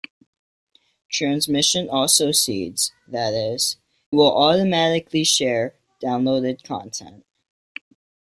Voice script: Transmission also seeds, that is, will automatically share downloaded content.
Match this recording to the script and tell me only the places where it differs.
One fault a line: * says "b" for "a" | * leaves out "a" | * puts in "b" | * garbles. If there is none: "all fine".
all fine